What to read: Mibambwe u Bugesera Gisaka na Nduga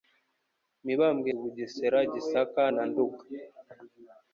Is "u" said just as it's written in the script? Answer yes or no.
yes